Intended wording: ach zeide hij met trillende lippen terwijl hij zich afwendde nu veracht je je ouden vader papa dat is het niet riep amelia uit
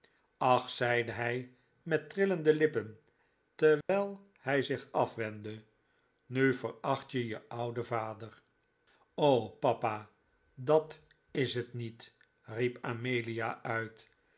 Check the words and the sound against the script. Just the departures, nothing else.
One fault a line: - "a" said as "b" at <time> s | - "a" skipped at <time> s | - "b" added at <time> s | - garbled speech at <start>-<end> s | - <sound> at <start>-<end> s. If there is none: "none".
- dropout at 3.8-3.9 s